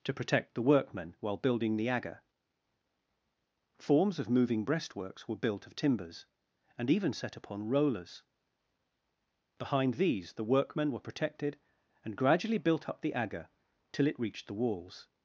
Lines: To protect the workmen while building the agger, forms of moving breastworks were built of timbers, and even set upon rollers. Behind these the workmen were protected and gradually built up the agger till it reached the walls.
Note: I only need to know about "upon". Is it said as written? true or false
true